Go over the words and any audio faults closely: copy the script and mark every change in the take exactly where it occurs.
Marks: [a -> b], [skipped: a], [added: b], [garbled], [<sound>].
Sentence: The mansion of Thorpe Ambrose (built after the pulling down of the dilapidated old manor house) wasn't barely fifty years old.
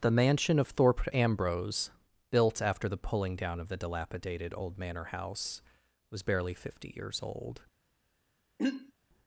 The mansion of Thorpe Ambrose (built after the pulling down of the dilapidated old manor house) [wasn't -> was] barely fifty years old. [throat clearing]